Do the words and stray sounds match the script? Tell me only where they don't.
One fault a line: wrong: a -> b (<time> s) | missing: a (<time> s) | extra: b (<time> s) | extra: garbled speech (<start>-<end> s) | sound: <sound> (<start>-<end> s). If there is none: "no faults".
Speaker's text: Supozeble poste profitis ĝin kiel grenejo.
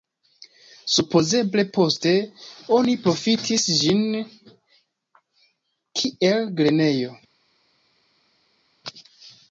extra: oni (2.8 s)